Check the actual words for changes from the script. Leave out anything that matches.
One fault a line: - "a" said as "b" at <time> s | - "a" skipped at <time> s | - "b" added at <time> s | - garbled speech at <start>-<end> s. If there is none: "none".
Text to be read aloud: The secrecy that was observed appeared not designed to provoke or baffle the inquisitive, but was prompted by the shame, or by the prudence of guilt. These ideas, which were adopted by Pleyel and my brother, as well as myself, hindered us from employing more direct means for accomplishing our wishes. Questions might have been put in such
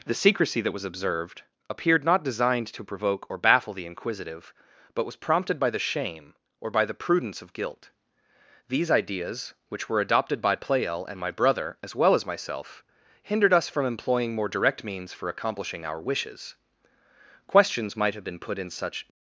none